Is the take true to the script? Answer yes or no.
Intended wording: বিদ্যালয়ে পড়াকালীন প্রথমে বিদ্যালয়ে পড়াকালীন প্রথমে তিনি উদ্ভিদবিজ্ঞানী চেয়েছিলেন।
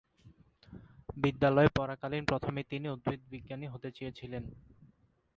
no